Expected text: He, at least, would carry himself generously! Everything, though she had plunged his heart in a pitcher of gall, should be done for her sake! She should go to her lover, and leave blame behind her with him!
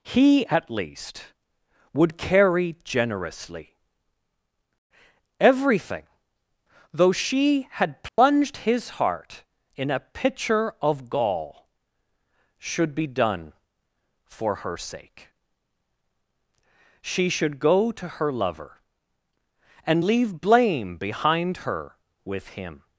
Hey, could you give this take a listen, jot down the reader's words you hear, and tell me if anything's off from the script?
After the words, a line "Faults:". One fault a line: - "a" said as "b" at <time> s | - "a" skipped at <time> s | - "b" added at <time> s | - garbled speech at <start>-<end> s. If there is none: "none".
He, at least, would carry generously! Everything, though she had plunged his heart in a pitcher of gall, should be done for her sake! She should go to her lover, and leave blame behind her with him!
Faults:
- "himself" skipped at 2.8 s